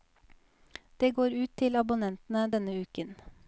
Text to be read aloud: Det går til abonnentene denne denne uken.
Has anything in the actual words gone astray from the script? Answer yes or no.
yes